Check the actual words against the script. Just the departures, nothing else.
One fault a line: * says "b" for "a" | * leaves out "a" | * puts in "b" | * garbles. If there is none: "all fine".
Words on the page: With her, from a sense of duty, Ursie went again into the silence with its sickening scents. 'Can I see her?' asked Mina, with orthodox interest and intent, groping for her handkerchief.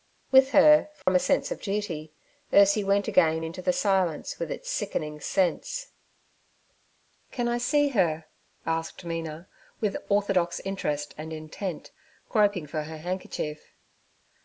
all fine